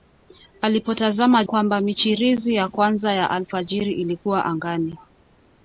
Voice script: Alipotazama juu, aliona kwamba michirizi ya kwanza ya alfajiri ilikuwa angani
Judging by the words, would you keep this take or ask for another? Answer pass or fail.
fail